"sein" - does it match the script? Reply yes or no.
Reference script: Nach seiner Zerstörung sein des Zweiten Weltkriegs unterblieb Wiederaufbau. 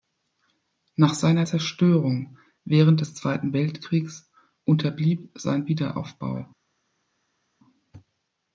no